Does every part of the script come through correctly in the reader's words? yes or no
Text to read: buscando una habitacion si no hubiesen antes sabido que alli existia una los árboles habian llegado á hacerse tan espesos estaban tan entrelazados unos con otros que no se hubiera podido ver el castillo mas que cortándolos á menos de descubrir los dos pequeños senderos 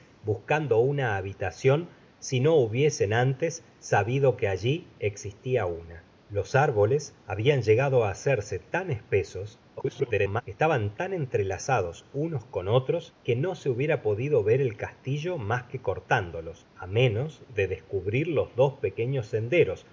no